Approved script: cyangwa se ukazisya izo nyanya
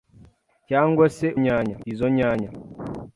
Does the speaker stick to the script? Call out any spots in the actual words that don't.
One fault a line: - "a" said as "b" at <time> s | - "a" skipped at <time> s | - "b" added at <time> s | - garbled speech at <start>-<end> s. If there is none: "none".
- "ukazisya" said as "nyanya" at 1.4 s